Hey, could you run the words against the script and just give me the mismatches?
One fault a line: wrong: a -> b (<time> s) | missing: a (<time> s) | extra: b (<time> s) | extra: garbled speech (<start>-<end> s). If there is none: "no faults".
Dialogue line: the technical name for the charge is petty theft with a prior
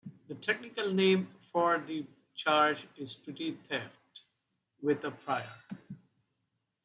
no faults